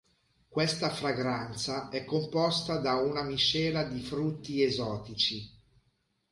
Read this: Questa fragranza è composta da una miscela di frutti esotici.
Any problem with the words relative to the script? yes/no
no